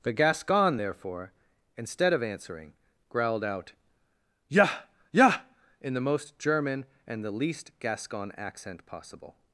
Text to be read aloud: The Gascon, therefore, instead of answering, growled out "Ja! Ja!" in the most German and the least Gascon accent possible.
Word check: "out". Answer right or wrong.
right